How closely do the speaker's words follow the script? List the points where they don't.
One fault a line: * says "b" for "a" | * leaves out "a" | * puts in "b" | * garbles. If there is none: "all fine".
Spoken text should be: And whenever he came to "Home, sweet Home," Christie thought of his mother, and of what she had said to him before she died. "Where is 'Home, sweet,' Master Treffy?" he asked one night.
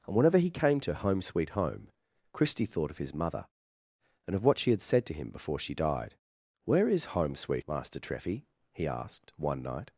all fine